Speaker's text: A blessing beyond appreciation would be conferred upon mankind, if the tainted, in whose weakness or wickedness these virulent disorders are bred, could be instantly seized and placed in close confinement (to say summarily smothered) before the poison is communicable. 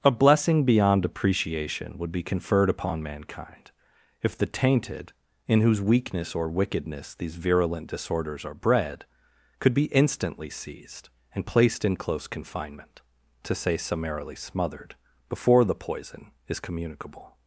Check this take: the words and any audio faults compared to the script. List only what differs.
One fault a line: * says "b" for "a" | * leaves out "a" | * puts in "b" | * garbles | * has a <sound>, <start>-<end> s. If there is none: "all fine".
all fine